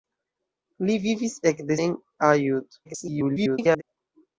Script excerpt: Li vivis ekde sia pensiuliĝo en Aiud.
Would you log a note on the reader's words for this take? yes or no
yes